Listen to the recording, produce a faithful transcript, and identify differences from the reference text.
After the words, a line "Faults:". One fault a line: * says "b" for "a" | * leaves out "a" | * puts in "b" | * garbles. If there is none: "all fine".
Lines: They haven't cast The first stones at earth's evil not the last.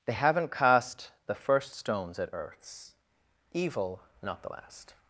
They haven't cast The first stones at earth's evil not the last.
Faults:
all fine